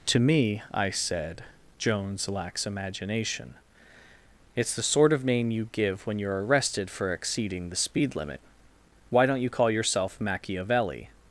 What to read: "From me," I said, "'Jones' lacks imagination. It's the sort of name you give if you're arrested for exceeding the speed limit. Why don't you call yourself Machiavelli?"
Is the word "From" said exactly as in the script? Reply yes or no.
no